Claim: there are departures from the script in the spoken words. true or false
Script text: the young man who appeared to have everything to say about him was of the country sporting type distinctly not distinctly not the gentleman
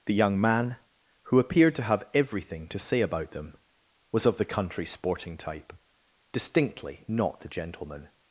true